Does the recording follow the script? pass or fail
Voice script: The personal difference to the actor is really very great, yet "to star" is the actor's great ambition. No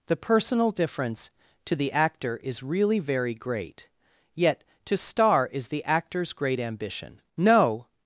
pass